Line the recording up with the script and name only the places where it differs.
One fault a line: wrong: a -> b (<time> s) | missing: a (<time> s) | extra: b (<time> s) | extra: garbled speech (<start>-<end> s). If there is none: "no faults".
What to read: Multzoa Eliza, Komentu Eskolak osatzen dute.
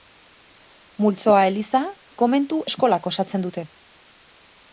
no faults